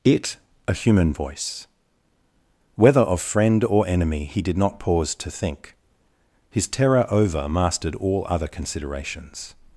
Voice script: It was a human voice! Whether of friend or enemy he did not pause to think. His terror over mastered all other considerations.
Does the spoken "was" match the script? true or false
false